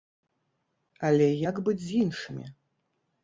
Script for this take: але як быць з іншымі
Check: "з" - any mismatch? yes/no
no